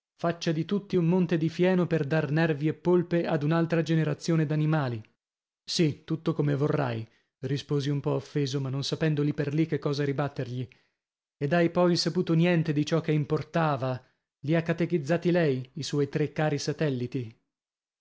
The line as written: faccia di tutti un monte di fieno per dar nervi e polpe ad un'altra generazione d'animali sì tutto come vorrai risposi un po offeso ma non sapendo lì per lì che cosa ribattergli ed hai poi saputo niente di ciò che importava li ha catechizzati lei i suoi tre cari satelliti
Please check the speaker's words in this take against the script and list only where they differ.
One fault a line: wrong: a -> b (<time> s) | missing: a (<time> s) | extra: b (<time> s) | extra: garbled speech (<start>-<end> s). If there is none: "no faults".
no faults